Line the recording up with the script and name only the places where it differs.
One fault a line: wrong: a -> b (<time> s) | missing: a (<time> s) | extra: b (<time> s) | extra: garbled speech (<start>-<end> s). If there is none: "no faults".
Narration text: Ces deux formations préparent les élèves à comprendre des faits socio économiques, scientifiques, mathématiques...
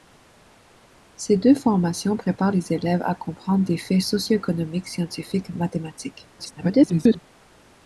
extra: garbled speech (6.4-7.2 s)